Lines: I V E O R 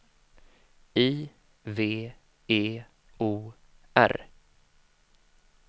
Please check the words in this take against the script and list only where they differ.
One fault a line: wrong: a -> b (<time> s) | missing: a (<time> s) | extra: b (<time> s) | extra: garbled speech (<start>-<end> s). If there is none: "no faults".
no faults